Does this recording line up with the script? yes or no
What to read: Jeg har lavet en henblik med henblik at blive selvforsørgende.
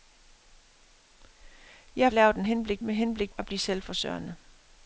yes